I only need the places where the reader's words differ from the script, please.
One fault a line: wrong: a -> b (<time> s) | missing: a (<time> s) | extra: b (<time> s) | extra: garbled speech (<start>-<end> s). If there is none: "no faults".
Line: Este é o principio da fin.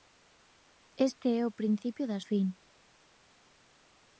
no faults